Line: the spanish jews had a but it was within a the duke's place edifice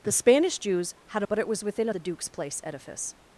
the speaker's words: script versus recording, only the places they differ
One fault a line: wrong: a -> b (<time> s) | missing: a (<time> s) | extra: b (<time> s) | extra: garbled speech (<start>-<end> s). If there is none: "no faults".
no faults